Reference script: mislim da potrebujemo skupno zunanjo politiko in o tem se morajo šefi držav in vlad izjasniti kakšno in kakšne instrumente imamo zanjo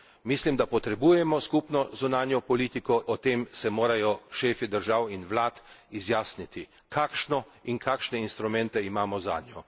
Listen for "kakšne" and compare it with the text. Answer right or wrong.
right